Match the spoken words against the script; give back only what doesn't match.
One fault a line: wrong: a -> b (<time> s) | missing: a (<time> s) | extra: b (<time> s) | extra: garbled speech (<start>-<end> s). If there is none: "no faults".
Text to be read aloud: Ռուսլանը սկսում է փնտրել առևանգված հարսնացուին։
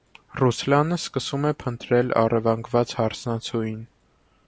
no faults